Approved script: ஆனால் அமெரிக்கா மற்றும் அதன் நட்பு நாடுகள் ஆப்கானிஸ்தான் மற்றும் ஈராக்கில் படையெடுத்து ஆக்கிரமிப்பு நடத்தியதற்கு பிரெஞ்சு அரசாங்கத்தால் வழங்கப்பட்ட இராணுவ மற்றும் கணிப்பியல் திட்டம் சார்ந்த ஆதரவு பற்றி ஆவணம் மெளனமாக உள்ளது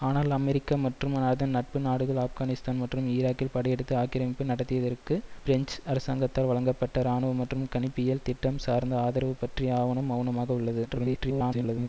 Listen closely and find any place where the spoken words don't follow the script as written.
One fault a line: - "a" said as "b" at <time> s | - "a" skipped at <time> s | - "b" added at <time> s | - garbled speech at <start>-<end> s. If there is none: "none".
- garbled speech at 10.9-11.9 s